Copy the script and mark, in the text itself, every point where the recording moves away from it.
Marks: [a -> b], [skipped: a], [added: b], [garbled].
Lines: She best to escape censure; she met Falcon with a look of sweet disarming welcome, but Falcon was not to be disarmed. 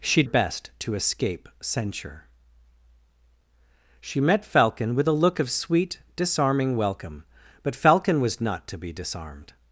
She best to escape censure; she met Falcon with a look of sweet disarming welcome, but Falcon was not to be disarmed.